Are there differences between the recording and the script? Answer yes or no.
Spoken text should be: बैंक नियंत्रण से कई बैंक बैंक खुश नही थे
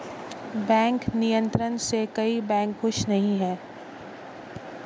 yes